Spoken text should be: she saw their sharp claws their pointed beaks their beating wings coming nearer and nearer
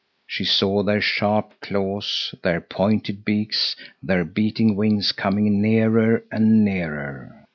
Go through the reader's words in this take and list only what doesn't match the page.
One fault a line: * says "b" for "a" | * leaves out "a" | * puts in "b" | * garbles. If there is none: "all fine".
all fine